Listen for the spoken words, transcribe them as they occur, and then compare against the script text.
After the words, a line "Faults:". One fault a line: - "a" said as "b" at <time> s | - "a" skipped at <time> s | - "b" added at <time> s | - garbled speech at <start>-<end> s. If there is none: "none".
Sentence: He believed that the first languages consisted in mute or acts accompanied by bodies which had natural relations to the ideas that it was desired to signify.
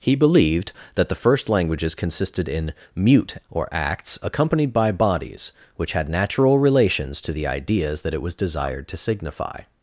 He believed that the first languages consisted in mute or acts accompanied by bodies which had natural relations to the ideas that it was desired to signify.
Faults:
none